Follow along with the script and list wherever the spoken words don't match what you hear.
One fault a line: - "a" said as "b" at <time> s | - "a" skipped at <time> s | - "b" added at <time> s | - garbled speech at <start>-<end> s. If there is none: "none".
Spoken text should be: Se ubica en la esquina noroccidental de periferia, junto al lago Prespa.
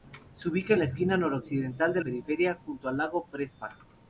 none